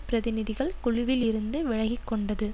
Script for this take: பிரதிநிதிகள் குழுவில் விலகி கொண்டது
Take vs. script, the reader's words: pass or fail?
fail